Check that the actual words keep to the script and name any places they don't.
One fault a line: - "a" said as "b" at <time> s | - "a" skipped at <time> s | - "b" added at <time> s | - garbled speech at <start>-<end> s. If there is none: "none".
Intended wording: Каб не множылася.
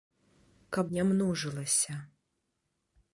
none